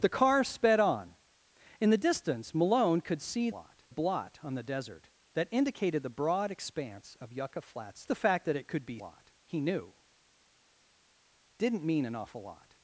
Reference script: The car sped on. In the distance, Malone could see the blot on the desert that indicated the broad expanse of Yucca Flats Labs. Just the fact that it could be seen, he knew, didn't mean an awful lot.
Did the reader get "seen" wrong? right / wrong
wrong